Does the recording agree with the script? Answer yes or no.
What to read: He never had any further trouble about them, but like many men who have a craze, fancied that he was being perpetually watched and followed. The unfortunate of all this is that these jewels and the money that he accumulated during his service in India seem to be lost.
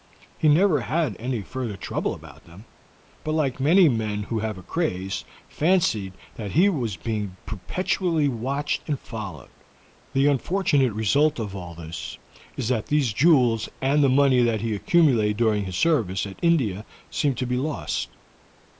no